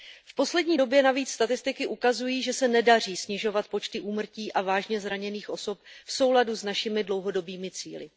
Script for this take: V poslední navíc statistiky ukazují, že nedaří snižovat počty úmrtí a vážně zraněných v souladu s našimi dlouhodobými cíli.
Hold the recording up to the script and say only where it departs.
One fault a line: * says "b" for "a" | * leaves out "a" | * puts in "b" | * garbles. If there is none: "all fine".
* puts in "době"
* puts in "se"
* puts in "osob"